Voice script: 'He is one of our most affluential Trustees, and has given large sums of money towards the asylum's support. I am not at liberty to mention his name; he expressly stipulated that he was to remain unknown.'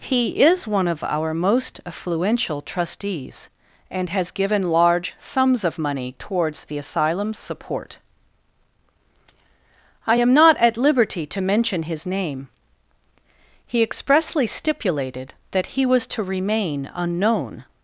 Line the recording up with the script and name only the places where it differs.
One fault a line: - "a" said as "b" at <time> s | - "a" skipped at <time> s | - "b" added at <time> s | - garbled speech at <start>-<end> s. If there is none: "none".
none